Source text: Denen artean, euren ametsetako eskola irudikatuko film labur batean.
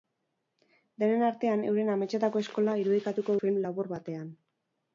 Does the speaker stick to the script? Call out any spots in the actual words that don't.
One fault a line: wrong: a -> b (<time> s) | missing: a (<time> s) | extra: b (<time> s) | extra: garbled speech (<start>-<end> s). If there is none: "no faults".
no faults